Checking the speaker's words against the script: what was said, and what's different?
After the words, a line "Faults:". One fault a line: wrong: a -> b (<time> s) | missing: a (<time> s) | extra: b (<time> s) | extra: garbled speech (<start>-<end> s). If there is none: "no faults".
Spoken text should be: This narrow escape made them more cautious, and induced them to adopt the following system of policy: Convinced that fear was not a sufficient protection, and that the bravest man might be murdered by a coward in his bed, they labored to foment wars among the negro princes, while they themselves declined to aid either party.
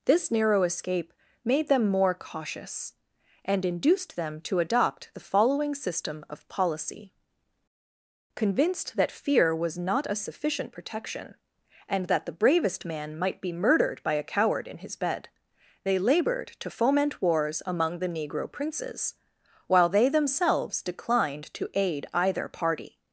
This narrow escape made them more cautious, and induced them to adopt the following system of policy: Convinced that fear was not a sufficient protection, and that the bravest man might be murdered by a coward in his bed, they labored to foment wars among the negro princes, while they themselves declined to aid either party.
Faults:
no faults